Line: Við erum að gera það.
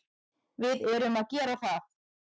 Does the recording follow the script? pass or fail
pass